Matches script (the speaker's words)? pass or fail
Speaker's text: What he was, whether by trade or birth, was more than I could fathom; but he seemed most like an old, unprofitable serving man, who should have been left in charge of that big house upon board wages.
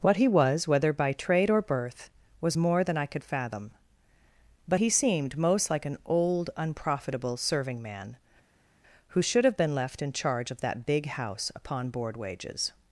pass